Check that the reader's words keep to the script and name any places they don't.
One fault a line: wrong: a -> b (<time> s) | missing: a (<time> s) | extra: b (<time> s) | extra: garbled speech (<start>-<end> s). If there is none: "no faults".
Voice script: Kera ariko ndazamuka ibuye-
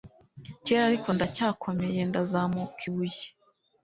extra: ndacyakomeye (1.1 s)